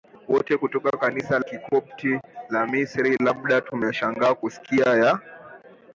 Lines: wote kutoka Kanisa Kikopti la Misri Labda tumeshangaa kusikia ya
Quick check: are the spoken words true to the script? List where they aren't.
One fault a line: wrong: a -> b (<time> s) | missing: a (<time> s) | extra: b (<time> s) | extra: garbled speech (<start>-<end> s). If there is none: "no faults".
no faults